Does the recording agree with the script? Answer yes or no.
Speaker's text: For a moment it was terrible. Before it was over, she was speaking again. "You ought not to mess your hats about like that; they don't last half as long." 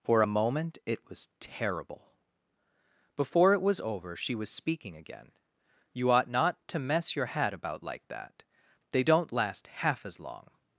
no